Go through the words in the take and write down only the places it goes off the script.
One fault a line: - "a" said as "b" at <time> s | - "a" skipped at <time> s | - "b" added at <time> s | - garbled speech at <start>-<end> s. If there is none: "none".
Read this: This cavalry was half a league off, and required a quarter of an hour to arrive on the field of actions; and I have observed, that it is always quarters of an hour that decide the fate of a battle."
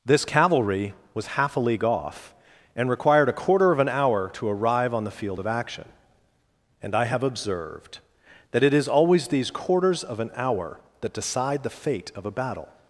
- "actions" said as "action" at 5.5 s
- "these" added at 9.3 s